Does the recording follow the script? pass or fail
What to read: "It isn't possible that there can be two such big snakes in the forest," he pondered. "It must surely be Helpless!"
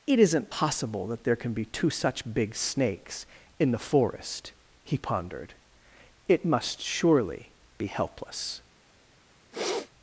pass